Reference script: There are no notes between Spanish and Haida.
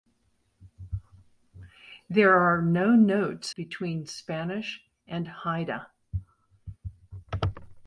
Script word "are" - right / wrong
right